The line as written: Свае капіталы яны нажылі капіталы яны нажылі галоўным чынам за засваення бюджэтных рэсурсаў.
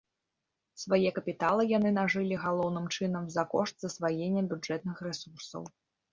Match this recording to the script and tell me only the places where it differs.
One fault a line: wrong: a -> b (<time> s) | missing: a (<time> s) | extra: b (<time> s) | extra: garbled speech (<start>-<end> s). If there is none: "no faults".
missing: капіталы яны нажылі (2.4 s)
extra: кошт (3.6 s)